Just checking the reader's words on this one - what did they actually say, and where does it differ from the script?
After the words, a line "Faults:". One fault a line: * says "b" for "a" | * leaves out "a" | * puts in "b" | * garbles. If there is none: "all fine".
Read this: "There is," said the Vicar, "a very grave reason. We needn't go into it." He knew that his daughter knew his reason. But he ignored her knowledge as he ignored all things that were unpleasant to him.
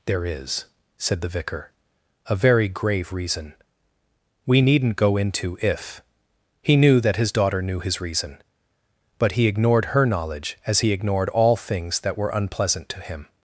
"There is," said the Vicar, "a very grave reason. We needn't go into if." He knew that his daughter knew his reason. But he ignored her knowledge as he ignored all things that were unpleasant to him.
Faults:
* says "if" for "it"